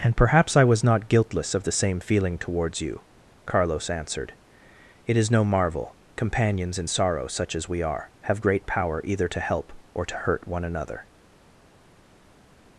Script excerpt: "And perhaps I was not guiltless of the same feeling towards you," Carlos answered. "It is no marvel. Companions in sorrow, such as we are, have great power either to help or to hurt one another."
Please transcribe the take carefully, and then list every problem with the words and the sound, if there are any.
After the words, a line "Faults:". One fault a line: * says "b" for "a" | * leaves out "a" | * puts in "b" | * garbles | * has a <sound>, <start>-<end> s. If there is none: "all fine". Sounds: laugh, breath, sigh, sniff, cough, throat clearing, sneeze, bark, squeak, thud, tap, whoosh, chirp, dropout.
"And perhaps I was not guiltless of the same feeling towards you," Carlos answered. "It is no marvel. Companions in sorrow, such as we are, have great power either to help or to hurt one another."
Faults:
all fine